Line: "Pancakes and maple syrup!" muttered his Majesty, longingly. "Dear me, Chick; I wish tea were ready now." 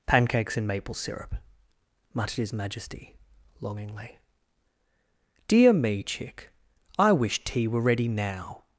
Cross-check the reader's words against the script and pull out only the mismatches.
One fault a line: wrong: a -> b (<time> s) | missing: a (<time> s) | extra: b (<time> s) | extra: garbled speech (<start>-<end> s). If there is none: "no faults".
no faults